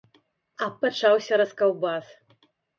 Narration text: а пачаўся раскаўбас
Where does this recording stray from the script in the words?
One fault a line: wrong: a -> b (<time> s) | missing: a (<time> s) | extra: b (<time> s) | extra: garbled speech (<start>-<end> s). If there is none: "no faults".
no faults